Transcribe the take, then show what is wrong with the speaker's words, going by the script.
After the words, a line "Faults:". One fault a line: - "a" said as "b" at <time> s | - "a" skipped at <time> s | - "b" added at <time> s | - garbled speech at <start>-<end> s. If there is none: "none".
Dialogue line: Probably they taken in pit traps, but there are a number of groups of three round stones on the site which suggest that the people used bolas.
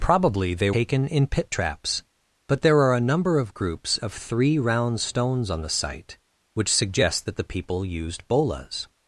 Probably they taken in pit traps, but there are a number of groups of three round stones on the site which suggest that the people used bolas.
Faults:
none